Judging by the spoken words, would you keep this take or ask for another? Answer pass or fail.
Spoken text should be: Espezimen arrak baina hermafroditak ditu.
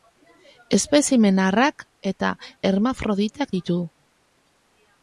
fail